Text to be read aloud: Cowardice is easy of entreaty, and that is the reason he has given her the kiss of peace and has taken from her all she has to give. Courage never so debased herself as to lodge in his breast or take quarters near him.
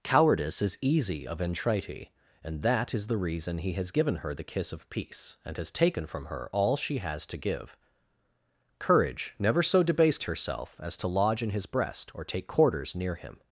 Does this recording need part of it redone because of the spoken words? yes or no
no